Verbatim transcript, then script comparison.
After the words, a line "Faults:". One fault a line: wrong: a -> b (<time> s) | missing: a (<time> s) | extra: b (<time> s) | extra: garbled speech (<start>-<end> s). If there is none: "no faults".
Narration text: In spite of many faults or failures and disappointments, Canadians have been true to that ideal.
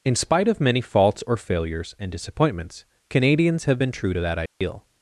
In spite of many faults or failures and disappointments, Canadians have been true to that ideal.
Faults:
no faults